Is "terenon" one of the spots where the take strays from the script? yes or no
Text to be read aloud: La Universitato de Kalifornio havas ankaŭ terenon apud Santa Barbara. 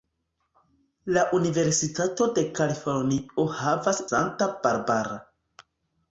yes